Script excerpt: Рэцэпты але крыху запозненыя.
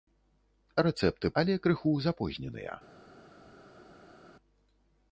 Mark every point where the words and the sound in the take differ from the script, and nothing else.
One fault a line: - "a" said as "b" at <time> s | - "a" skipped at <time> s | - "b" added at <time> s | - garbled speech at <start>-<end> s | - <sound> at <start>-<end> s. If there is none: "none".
none